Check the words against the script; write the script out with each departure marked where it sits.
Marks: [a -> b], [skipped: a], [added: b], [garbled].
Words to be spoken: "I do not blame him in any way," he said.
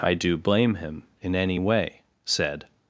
"I do [skipped: not] blame him in any way," [skipped: he] said.